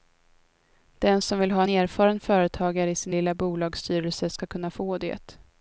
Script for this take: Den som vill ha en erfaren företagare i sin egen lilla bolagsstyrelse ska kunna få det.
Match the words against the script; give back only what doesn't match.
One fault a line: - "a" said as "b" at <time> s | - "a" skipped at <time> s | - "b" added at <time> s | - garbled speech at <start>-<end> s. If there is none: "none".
- "en" skipped at 1.6 s
- "egen" skipped at 3.1 s